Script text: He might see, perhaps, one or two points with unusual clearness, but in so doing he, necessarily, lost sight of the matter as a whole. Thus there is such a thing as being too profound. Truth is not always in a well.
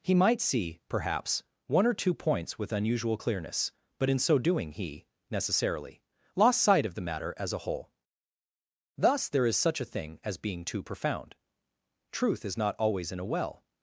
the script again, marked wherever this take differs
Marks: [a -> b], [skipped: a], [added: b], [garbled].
He might see, perhaps, one or two points with unusual clearness, but in so doing he, necessarily, lost sight of the matter as a whole. Thus there is such a thing as being too profound. Truth is not always in a well.